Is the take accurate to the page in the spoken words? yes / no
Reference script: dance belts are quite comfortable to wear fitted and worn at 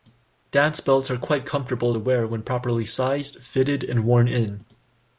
no